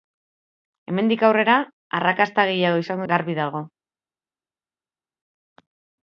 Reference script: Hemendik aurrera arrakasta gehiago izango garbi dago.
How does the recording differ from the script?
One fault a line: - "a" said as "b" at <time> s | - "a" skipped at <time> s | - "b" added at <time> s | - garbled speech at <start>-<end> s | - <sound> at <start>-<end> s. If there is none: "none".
none